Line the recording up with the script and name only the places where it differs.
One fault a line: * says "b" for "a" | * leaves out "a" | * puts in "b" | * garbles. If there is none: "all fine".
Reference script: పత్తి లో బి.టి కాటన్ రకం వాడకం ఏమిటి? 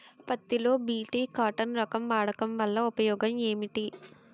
* puts in "వల్ల ఉపయోగం"